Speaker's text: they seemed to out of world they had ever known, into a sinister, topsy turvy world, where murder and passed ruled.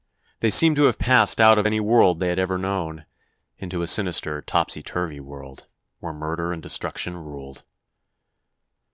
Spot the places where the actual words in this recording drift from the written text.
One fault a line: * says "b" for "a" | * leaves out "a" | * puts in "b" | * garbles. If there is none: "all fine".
* puts in "have passed"
* puts in "any"
* says "destruction" for "passed"